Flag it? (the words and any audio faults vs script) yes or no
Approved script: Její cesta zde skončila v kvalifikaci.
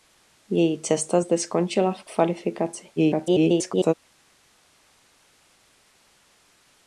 yes